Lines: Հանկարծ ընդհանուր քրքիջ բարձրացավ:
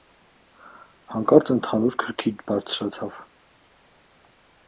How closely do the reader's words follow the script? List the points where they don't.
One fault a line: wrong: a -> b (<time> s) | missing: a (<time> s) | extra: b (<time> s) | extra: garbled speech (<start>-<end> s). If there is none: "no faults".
no faults